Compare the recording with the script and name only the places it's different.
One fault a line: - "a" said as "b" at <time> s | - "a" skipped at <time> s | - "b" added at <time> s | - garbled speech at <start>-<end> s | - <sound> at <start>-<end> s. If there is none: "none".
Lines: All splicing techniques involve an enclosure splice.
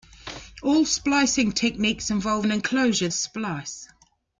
none